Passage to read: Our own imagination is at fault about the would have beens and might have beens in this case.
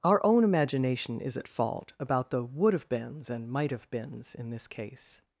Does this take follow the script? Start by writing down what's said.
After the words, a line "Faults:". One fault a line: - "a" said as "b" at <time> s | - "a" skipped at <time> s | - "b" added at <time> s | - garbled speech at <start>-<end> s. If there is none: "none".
Our own imagination is at fault about the would have beens and might have beens in this case.
Faults:
none